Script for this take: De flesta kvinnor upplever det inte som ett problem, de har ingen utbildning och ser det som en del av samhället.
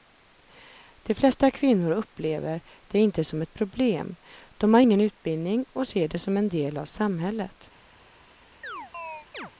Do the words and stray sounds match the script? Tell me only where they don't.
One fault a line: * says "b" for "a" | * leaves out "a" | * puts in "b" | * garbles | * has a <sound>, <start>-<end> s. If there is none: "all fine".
* has a chirp, 8.6-9.5 s